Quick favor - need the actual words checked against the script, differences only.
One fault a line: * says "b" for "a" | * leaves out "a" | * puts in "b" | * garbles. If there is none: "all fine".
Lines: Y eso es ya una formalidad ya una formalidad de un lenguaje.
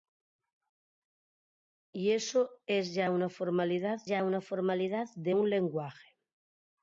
all fine